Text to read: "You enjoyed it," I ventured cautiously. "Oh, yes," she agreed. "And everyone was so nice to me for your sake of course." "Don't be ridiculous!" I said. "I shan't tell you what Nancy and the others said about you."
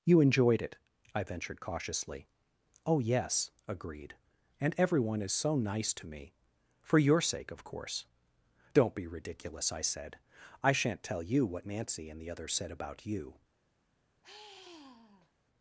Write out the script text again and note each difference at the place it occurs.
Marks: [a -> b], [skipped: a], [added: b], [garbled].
"You enjoyed it," I ventured cautiously. "Oh, yes," [skipped: she] agreed. "And everyone [was -> is] so nice to me for your sake of course." "Don't be ridiculous!" I said. "I shan't tell you what Nancy and the others said about you."